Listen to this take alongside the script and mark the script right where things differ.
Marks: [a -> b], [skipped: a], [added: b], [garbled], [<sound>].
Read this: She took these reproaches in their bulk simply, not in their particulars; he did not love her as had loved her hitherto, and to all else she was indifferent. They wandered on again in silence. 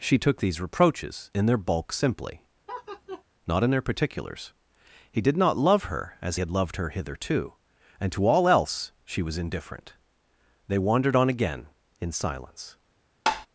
She took these reproaches in their bulk simply, [laugh] not in their particulars; he did not love her as had loved her hitherto, and to all else she was indifferent. They wandered on again in silence. [tap]